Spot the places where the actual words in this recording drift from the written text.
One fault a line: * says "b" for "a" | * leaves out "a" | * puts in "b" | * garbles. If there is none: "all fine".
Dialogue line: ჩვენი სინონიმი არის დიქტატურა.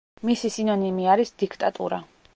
* says "მისი" for "ჩვენი"